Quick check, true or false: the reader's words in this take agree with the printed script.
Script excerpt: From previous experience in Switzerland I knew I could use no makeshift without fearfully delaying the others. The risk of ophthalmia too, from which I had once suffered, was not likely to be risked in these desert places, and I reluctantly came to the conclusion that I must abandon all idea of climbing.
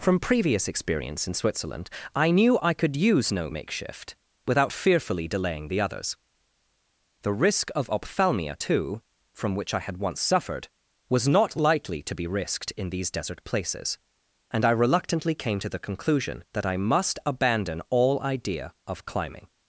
true